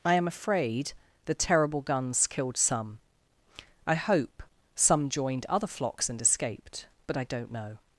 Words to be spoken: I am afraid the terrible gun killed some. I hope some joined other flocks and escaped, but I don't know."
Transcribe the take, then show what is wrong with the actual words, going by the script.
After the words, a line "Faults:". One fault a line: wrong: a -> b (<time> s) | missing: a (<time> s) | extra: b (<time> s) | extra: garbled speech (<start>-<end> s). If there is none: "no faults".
I am afraid the terrible guns killed some. I hope some joined other flocks and escaped, but I don't know."
Faults:
wrong: gun -> guns (1.8 s)